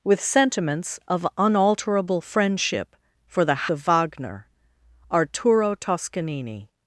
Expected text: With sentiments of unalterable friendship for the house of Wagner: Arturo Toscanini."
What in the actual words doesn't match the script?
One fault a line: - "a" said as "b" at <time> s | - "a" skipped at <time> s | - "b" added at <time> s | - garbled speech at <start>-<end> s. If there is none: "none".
- "house" skipped at 3.7 s